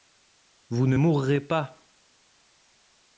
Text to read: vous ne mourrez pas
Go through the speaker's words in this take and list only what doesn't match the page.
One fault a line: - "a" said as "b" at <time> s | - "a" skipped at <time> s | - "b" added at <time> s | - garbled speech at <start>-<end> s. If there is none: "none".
none